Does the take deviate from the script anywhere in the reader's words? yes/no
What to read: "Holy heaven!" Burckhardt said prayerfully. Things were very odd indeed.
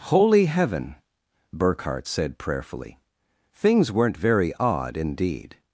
yes